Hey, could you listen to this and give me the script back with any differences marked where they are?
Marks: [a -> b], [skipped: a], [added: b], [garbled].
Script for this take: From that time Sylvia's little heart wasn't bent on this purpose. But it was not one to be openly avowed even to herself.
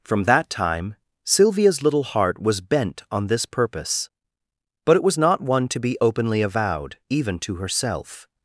From that time Sylvia's little heart [wasn't -> was] bent on this purpose. But it was not one to be openly avowed even to herself.